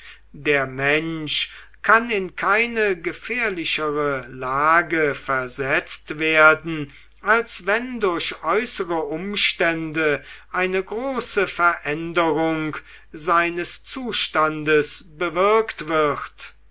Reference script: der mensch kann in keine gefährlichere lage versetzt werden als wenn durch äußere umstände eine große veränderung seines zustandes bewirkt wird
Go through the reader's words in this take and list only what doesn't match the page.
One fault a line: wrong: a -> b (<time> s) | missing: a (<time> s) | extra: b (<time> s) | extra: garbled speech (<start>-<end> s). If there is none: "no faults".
no faults